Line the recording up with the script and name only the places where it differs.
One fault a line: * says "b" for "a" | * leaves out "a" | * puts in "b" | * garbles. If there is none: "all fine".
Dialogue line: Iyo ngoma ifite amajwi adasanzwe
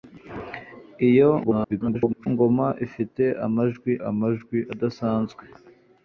* garbles
* puts in "amajwi"